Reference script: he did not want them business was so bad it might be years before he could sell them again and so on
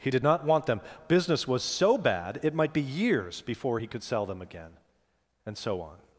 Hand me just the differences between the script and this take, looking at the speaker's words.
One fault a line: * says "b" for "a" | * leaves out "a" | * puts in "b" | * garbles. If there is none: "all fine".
all fine